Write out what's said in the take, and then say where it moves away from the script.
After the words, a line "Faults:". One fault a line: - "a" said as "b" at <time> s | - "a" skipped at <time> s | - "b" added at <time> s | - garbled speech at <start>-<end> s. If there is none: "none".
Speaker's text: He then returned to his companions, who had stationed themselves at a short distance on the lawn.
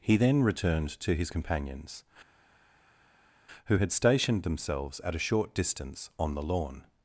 He then returned to his companions, who had stationed themselves at a short distance on the lawn.
Faults:
none